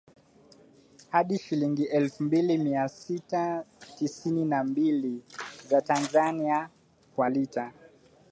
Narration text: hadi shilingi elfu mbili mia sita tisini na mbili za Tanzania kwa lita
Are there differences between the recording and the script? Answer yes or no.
no